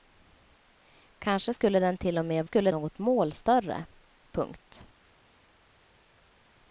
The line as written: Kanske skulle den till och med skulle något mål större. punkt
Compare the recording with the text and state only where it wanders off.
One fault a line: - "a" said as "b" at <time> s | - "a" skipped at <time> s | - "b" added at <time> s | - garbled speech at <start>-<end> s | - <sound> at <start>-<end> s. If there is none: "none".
none